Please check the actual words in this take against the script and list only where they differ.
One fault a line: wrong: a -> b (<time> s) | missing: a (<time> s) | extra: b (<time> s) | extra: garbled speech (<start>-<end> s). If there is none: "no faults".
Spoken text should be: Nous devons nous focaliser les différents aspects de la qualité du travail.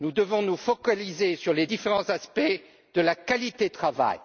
extra: sur (1.4 s)